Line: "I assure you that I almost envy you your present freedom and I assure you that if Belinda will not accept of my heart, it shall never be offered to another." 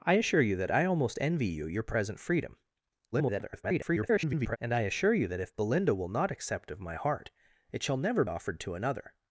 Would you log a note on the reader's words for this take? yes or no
yes